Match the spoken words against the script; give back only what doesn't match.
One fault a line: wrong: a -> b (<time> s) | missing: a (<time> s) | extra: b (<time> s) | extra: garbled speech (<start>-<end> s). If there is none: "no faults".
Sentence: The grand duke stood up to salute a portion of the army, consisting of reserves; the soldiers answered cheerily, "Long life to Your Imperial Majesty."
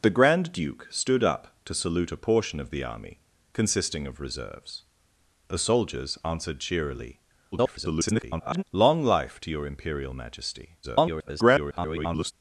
extra: garbled speech (7.5-8.6 s)
extra: garbled speech (10.8-12.3 s)